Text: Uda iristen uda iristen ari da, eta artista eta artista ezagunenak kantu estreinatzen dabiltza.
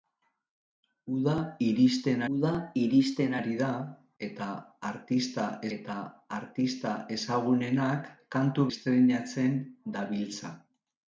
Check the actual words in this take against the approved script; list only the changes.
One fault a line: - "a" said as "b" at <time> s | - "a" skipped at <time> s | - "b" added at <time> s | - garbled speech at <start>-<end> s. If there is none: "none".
none